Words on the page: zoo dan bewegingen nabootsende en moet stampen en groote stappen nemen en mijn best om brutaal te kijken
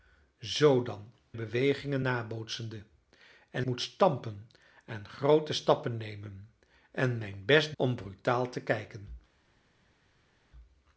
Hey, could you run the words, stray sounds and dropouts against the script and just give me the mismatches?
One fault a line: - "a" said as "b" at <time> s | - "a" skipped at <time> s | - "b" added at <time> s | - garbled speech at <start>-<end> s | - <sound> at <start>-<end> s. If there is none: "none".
none